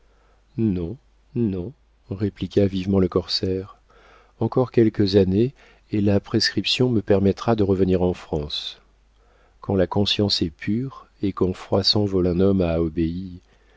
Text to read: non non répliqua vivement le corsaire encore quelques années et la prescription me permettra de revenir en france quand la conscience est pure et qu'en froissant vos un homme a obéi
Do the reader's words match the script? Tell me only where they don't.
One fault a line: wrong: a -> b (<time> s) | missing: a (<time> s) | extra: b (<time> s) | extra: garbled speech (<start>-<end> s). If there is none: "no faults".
no faults